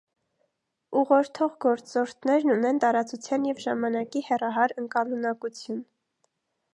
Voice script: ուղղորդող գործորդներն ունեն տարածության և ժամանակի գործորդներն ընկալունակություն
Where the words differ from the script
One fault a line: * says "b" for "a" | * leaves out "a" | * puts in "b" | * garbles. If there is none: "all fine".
* says "հեռահար" for "գործորդներն"